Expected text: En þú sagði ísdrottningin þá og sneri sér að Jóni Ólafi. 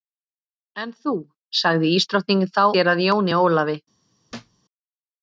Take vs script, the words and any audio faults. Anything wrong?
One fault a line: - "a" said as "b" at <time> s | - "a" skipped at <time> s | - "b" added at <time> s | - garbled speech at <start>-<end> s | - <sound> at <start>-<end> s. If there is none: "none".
- "og sneri" skipped at 2.6 s
- thud at 4.3-4.6 s